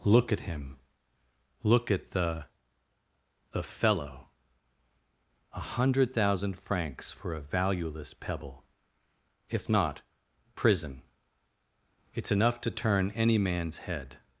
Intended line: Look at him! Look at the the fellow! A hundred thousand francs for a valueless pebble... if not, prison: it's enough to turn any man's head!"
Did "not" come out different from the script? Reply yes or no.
no